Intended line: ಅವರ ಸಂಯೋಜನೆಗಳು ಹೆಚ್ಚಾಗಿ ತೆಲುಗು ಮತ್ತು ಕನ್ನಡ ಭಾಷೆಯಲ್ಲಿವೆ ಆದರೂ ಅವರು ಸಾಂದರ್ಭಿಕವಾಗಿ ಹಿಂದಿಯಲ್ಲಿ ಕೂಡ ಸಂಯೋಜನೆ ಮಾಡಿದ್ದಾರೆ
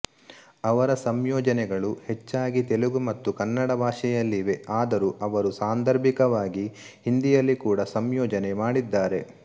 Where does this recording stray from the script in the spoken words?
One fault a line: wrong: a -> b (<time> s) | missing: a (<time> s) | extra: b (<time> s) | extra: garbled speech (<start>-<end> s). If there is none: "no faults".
no faults